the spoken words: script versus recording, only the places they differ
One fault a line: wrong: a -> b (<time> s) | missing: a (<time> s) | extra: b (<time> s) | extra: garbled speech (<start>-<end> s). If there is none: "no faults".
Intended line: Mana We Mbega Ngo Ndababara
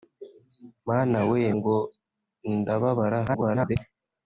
missing: Mbega (1.4 s)
extra: garbled speech (3.3-3.8 s)